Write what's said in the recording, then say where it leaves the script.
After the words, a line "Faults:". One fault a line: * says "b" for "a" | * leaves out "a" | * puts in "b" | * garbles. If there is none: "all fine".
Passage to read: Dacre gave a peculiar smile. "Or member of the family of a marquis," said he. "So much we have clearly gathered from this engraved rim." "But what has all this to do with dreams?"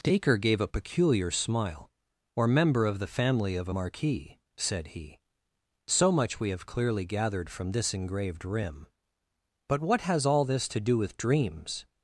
Dacre gave a peculiar smile. "Or member of the family of a marquis," said he. "So much we have clearly gathered from this engraved rim." "But what has all this to do with dreams?"
Faults:
all fine